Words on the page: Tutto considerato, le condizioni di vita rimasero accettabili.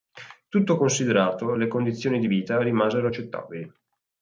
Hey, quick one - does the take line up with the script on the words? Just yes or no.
yes